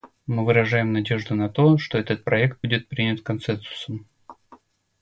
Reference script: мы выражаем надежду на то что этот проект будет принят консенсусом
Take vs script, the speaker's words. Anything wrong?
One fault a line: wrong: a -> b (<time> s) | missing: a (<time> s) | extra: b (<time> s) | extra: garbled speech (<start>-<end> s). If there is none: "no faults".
no faults